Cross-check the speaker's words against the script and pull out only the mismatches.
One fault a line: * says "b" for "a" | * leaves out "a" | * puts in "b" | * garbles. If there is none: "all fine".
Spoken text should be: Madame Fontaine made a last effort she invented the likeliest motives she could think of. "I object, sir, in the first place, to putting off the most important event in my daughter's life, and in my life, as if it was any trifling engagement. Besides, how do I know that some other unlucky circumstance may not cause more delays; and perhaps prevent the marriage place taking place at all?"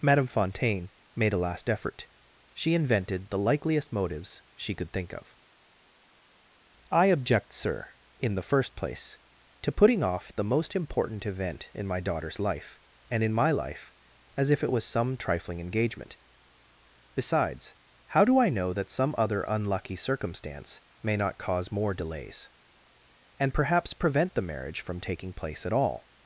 * says "some" for "any"
* says "from" for "place"